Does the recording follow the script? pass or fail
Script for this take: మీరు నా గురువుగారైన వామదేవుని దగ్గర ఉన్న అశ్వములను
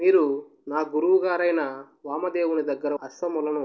fail